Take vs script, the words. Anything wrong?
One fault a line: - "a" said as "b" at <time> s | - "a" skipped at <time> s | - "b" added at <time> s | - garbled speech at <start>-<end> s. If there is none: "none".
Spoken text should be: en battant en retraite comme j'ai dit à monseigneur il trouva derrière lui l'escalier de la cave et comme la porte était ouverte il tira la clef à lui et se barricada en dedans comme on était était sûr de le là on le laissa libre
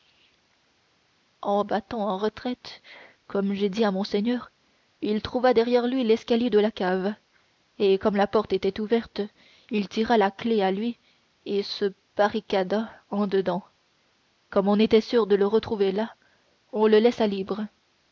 - "était" skipped at 15.0 s
- "retrouver" added at 15.4 s